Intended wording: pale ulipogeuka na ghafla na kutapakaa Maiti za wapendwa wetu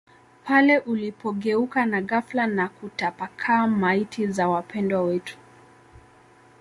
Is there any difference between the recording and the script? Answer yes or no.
no